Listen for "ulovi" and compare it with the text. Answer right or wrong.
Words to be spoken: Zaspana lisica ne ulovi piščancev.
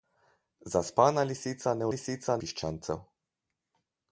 wrong